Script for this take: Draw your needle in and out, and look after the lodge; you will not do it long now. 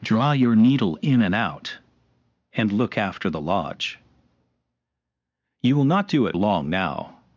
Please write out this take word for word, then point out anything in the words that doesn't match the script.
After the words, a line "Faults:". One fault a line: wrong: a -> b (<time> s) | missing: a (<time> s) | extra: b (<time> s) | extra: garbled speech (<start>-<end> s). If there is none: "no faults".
Draw your needle in and out, and look after the lodge; you will not do it long now.
Faults:
no faults